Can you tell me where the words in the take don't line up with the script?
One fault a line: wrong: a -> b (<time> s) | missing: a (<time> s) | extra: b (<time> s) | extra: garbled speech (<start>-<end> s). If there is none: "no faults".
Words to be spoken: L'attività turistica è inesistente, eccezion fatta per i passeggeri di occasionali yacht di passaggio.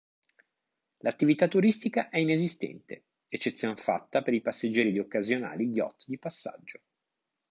no faults